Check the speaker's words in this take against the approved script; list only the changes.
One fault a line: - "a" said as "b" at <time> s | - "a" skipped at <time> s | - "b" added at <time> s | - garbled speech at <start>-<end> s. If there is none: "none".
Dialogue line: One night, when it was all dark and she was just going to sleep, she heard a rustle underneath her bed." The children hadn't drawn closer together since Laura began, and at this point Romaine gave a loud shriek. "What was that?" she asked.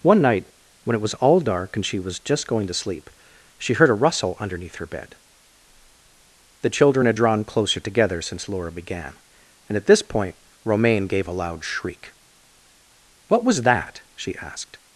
- "hadn't" said as "had" at 7.0 s